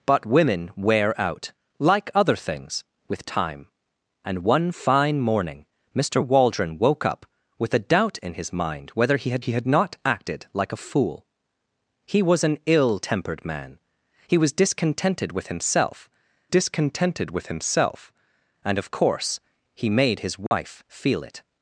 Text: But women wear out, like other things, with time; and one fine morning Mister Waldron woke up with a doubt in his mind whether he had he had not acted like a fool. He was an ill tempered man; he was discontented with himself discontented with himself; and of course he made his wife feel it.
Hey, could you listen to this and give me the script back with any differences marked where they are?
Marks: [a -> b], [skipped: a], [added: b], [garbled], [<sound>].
But women wear out, like other things, with time; and one fine morning Mister Waldron woke up with a doubt in his mind whether he had he had not acted like a fool. He was an ill tempered man; he was discontented with himself discontented with himself; and of course he made his wife [dropout] feel it.